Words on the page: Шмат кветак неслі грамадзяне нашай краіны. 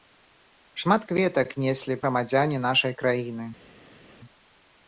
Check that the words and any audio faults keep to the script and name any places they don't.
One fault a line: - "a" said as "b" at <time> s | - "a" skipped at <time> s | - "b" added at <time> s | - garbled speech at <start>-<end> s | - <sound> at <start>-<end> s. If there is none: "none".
none